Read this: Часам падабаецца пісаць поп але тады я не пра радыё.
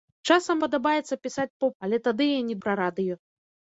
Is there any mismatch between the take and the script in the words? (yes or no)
no